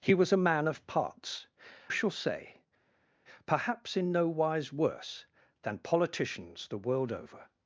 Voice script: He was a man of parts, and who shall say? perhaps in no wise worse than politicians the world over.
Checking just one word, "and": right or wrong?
wrong